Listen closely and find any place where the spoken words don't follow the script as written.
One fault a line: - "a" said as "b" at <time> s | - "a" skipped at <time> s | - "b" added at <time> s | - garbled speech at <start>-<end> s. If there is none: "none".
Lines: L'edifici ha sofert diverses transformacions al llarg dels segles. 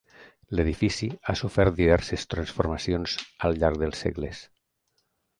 none